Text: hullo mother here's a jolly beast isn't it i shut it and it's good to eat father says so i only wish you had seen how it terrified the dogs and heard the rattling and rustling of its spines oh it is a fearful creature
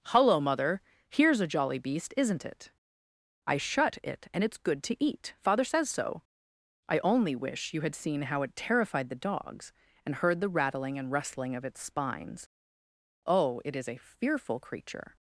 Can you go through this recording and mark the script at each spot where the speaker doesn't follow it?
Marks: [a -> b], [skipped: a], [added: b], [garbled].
hullo mother here's a jolly beast isn't it i shut it and it's good to eat father says so i only wish you had seen how it terrified the dogs and heard the rattling and rustling of its spines oh it is a fearful creature